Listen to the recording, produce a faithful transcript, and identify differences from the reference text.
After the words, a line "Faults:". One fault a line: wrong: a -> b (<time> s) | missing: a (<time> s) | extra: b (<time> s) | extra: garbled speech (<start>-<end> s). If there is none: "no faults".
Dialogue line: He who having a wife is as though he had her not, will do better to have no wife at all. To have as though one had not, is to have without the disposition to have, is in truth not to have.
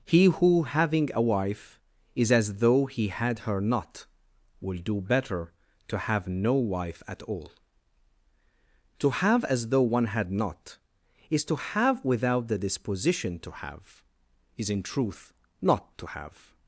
He who having a wife is as though he had her not, will do better to have no wife at all. To have as though one had not, is to have without the disposition to have, is in truth not to have.
Faults:
no faults